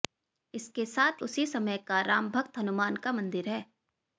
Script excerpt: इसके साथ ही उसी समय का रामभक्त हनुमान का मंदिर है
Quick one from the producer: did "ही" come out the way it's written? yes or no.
no